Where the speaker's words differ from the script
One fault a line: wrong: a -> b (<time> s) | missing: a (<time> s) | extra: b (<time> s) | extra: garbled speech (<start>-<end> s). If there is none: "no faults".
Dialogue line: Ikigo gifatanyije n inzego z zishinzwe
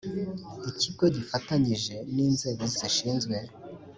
no faults